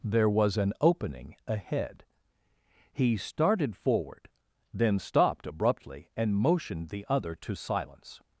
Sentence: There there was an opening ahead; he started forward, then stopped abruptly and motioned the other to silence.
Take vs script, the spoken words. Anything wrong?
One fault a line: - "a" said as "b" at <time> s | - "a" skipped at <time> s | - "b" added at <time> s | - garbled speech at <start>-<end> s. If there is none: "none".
- "there" skipped at 0.3 s